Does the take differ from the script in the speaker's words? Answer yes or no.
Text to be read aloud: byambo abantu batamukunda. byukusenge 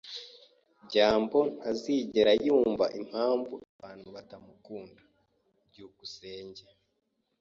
yes